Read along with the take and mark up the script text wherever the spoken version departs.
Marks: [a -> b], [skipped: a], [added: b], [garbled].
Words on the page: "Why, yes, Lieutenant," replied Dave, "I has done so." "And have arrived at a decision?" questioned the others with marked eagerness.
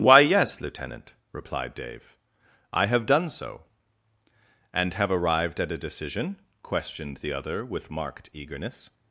"Why, yes, Lieutenant," replied Dave, "I [has -> have] done so." "And have arrived at a decision?" questioned the [others -> other] with marked eagerness.